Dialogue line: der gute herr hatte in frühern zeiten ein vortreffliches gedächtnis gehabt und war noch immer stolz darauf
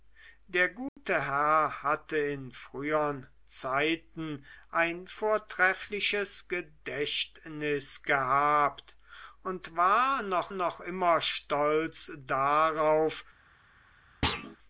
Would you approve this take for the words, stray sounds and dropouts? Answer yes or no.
no